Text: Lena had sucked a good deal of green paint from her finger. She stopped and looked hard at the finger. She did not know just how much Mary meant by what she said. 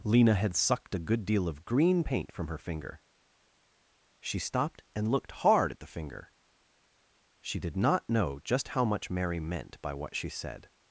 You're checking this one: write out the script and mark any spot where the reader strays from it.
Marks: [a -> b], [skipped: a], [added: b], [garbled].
Lena had sucked a good deal of green paint from her finger. She stopped and looked hard at the finger. She did not know just how much Mary meant by what she said.